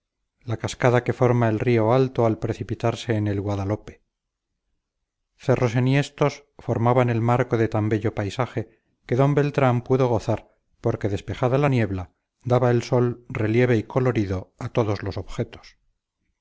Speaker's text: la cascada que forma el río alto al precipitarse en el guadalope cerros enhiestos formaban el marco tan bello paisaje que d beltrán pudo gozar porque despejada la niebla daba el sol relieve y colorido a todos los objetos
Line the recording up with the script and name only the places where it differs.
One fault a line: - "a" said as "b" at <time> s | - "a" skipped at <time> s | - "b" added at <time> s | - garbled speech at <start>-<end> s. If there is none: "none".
- "de" added at 7.5 s